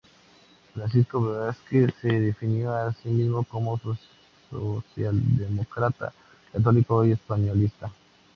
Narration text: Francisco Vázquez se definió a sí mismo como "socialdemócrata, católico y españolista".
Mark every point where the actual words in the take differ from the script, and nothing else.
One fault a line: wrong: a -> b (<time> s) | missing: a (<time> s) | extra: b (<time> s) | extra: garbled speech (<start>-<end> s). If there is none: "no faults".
no faults